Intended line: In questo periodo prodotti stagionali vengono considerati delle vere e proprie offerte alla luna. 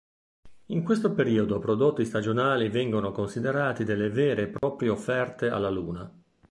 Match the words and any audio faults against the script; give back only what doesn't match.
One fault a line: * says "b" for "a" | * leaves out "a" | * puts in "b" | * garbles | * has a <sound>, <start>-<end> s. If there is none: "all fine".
* has a dropout, 4.6-4.6 s